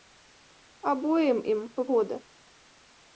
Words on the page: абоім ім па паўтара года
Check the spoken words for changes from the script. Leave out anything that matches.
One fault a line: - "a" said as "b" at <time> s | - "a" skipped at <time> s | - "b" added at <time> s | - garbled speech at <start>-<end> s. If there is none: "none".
- "паўтара" skipped at 1.8 s